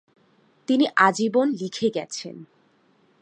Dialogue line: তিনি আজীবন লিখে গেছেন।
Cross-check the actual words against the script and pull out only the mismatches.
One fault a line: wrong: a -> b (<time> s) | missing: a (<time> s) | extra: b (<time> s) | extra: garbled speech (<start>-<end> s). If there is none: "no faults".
no faults